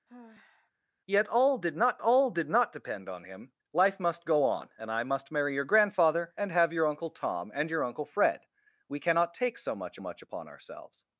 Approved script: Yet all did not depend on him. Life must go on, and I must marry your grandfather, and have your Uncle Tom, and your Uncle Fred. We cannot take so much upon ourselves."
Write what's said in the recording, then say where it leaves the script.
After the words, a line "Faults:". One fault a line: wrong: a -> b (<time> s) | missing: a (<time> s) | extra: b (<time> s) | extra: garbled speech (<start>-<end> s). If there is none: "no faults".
Yet all did not all did not depend on him. Life must go on, and I must marry your grandfather, and have your Uncle Tom, and your Uncle Fred. We cannot take so much much upon ourselves."
Faults:
extra: all did not (2.0 s)
extra: much (10.0 s)